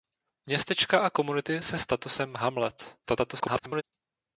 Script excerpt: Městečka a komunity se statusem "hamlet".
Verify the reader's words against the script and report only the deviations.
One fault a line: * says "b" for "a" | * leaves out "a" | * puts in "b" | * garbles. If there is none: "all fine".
* garbles